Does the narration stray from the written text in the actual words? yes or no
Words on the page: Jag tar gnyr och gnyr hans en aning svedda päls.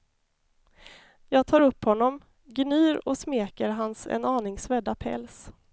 yes